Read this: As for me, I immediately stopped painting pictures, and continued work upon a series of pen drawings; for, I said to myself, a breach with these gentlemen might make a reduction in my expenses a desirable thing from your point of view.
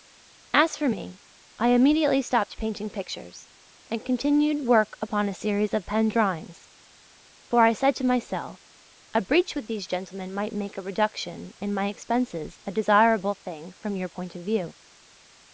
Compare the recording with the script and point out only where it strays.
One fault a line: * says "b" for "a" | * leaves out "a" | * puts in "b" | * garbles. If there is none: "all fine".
all fine